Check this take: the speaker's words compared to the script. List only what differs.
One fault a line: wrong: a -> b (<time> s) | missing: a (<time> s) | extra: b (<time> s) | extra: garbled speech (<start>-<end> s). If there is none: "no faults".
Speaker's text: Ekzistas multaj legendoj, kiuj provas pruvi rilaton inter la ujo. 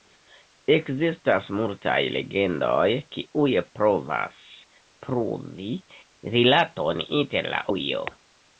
no faults